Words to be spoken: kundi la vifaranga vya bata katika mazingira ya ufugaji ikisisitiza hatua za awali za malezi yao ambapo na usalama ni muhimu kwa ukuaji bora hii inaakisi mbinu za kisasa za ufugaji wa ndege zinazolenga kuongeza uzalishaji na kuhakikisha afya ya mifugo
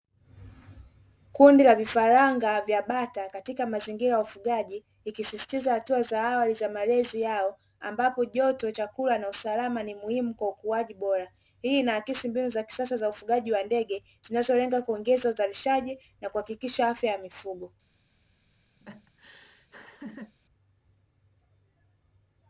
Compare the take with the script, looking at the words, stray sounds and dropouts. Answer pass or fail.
fail